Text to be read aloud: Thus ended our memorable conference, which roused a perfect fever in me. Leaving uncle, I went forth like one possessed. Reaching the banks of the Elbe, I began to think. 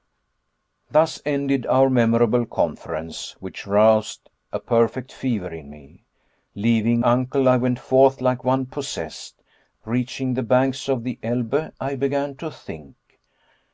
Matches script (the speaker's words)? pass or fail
pass